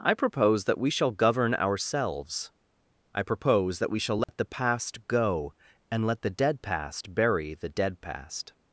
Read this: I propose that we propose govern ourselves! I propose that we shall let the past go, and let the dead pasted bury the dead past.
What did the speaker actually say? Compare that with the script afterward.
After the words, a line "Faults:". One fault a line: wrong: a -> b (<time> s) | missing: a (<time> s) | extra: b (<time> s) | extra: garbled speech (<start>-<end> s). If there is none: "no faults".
I propose that we shall govern ourselves! I propose that we shall let the past go, and let the dead past bury the dead past.
Faults:
wrong: propose -> shall (0.9 s)
wrong: pasted -> past (6.6 s)